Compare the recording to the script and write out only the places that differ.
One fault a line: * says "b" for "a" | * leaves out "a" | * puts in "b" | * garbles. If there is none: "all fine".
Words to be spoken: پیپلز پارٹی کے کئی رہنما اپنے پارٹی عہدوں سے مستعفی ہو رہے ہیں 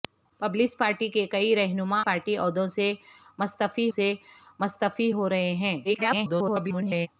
* leaves out "اپنے"
* puts in "سے مستعفی"
* garbles